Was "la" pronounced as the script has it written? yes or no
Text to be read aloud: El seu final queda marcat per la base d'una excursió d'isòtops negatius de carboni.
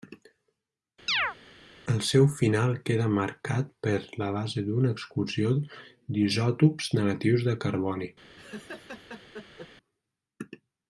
yes